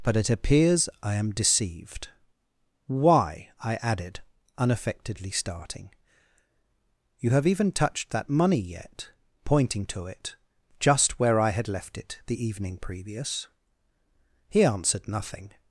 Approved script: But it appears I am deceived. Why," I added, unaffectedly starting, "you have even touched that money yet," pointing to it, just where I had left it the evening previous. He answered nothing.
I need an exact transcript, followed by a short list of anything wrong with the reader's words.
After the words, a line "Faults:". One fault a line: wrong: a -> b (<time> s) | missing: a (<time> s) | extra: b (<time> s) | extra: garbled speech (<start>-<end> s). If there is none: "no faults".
But it appears I am deceived. Why," I added, unaffectedly starting, "you have even touched that money yet," pointing to it, just where I had left it the evening previous. He answered nothing.
Faults:
no faults